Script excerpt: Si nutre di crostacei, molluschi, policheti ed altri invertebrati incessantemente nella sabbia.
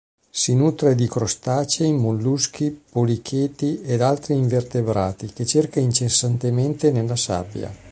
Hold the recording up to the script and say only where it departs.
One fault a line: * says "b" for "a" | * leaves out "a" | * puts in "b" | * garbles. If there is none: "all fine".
* puts in "che cerca"